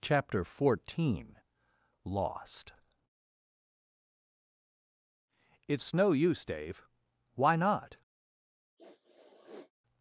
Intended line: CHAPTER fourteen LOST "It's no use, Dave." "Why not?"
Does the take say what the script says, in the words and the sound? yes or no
no